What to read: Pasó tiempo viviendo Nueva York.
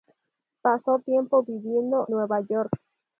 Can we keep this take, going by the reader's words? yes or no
yes